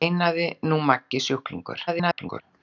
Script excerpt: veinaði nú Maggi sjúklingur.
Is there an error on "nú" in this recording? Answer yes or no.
no